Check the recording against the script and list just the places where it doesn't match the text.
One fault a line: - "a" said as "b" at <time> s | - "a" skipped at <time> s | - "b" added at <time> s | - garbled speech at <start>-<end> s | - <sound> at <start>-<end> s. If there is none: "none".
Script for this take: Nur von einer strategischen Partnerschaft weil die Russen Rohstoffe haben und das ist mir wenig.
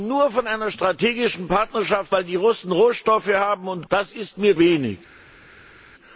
none